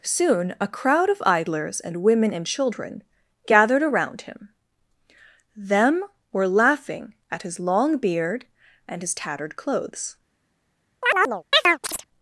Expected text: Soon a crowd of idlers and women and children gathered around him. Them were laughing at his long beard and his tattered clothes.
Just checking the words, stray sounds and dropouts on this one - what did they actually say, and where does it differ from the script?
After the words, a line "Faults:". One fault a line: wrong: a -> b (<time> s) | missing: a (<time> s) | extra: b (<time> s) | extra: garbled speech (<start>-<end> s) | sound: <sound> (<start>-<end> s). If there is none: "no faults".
Soon a crowd of idlers and women and children gathered around him. Them were laughing at his long beard and his tattered clothes.
Faults:
sound: chirp (11.0-12.1 s)